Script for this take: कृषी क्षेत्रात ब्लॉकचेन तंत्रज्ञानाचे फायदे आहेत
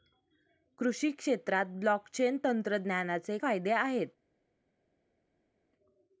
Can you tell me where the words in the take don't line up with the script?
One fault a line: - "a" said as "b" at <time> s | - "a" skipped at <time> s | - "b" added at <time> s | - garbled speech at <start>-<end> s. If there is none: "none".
none